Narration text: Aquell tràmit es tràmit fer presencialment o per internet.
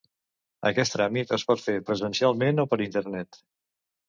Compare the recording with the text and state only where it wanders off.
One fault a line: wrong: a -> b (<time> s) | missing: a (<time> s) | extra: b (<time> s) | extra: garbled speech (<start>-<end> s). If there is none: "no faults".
wrong: Aquell -> Aquest (0.7 s)
wrong: tràmit -> pot (1.5 s)